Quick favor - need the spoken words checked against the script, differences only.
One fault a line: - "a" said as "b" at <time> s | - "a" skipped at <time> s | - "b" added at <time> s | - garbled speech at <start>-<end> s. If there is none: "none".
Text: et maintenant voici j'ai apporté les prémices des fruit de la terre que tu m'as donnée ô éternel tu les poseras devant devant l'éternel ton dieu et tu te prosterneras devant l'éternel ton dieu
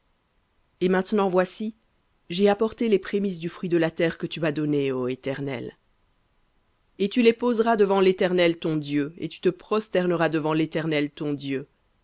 - "des" said as "du" at 3.4 s
- "et" added at 7.0 s
- "devant" skipped at 8.0 s